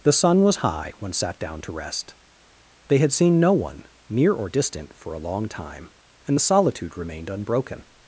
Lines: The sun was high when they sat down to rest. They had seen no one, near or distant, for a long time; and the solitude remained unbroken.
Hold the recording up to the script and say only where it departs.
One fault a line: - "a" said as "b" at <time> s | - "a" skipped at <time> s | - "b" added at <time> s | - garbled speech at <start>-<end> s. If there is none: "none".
- "they" skipped at 1.1 s